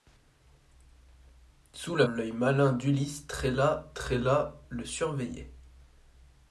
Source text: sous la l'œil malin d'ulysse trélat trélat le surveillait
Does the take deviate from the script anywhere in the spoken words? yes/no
no